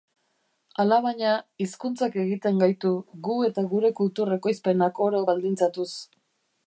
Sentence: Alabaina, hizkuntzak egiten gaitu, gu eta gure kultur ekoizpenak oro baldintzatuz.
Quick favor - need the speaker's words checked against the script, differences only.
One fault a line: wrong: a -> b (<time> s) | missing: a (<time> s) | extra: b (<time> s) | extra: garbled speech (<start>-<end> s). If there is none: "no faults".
no faults